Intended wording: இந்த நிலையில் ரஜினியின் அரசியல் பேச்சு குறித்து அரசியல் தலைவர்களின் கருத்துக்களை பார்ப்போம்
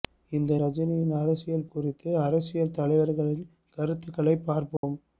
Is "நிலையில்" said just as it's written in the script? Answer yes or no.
no